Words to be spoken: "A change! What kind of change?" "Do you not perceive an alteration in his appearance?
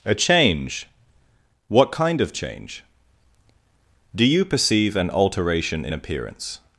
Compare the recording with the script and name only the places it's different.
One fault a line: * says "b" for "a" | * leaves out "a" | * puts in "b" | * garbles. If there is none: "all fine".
* leaves out "not"
* leaves out "his"